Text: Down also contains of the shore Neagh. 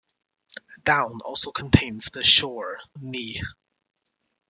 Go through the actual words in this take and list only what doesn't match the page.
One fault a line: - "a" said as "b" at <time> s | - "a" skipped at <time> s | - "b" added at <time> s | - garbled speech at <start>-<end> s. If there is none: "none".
none